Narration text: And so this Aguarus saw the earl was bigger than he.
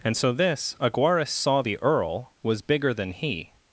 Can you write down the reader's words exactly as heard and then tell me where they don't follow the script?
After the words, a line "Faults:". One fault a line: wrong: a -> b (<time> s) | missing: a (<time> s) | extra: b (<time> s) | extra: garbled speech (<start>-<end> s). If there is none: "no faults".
And so this Aguarus saw the earl was bigger than he.
Faults:
no faults